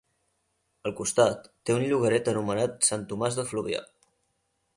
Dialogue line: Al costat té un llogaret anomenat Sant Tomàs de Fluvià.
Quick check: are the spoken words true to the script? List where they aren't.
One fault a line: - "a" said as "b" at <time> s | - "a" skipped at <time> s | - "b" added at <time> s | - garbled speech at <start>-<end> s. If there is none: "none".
none